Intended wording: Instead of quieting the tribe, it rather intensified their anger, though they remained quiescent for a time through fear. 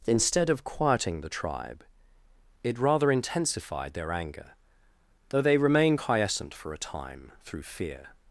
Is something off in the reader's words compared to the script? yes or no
yes